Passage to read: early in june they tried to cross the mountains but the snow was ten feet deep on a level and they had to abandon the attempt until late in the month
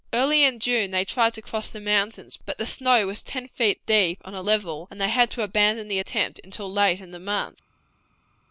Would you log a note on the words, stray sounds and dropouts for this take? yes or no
no